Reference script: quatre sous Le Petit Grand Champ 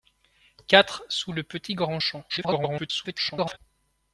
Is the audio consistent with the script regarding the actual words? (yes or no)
no